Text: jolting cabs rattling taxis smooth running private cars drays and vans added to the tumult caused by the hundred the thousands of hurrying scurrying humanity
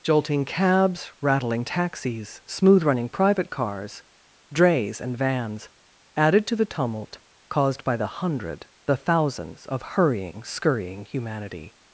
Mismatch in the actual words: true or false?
false